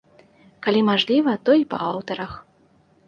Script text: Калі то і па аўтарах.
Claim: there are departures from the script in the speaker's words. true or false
true